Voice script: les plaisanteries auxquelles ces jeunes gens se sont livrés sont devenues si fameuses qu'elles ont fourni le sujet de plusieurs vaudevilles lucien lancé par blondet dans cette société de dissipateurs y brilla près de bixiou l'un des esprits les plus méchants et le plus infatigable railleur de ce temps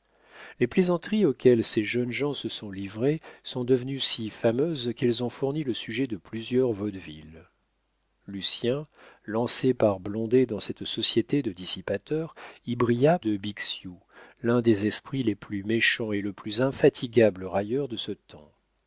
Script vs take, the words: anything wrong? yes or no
yes